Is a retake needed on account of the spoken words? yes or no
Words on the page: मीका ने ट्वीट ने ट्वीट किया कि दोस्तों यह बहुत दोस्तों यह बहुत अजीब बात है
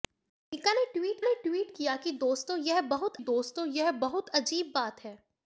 no